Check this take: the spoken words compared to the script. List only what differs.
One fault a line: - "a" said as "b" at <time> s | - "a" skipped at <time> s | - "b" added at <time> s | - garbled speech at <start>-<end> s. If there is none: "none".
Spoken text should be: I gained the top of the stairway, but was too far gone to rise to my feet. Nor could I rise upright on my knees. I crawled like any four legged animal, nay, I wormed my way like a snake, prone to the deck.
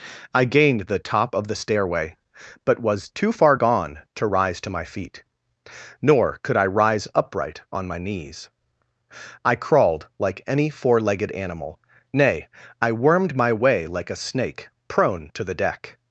none